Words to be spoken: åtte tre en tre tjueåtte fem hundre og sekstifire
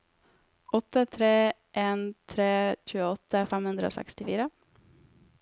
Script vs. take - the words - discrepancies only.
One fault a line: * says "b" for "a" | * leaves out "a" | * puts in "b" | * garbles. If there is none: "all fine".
all fine